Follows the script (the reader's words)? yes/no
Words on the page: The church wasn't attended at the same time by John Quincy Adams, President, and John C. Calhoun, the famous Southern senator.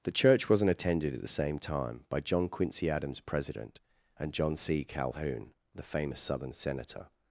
yes